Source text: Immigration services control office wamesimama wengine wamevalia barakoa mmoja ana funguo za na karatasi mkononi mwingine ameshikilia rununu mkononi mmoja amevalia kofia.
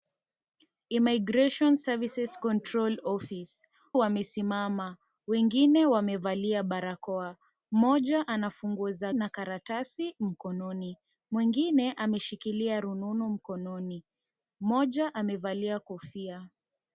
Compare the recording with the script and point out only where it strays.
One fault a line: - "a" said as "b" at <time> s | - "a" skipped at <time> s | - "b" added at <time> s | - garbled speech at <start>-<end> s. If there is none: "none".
none